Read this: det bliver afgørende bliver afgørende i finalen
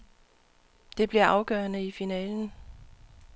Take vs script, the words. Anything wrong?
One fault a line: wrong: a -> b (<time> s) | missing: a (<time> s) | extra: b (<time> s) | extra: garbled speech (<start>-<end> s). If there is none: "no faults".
missing: bliver afgørende (1.9 s)